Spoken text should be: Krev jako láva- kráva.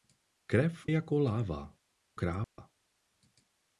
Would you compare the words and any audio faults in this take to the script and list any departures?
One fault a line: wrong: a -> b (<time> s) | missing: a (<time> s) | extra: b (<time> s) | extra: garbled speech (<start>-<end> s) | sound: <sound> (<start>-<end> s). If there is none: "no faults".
sound: dropout (2.4-2.6 s)